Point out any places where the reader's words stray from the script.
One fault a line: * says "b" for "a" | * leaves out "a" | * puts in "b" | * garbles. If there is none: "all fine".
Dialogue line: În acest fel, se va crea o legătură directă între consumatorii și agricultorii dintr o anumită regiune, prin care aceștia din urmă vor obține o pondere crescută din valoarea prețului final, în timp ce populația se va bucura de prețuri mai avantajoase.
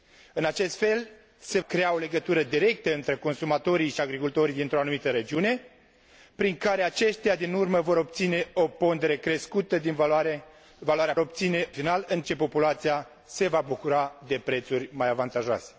* leaves out "va"
* says "obține" for "prețului"
* leaves out "timp"